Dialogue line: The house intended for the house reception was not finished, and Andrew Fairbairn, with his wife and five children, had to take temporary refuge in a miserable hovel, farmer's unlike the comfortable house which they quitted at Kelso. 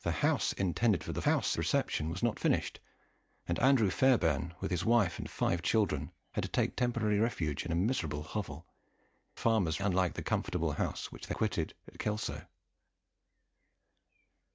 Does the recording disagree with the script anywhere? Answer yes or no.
no